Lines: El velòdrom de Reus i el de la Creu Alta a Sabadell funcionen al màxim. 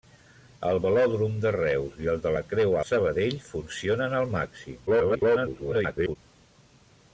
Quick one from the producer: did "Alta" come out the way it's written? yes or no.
no